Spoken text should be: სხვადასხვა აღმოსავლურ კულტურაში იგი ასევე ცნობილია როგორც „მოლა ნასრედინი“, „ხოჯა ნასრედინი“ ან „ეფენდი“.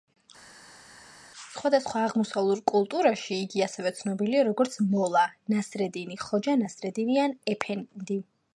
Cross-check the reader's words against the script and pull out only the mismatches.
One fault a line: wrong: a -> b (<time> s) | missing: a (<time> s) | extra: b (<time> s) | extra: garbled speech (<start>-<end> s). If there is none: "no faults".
no faults